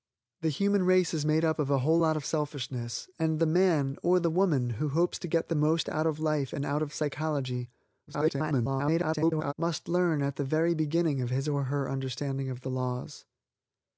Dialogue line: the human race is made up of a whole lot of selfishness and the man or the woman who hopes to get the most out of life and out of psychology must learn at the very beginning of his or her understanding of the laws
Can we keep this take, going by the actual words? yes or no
no